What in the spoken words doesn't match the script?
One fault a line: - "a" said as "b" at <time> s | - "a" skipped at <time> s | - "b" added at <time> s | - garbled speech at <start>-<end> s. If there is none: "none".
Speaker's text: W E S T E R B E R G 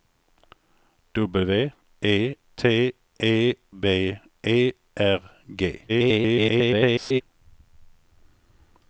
- "S" skipped at 2.4 s
- "R" skipped at 3.5 s
- garbled speech at 5.9-7.2 s